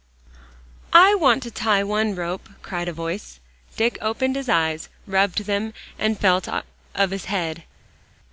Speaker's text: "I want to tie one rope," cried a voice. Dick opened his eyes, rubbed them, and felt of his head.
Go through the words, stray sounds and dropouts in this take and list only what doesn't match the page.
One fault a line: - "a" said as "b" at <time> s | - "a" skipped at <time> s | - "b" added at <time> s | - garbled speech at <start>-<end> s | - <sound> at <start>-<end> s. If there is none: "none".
none